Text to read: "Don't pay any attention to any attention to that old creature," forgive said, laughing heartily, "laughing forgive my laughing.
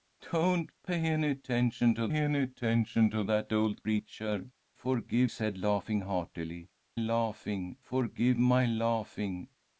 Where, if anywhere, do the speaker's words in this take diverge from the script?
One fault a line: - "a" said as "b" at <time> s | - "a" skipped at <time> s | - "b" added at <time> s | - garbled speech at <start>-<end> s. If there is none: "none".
none